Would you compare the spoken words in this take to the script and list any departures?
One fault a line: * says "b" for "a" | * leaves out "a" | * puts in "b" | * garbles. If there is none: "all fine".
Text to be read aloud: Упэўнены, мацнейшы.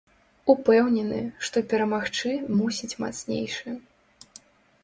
* puts in "што перамагчы мусіць"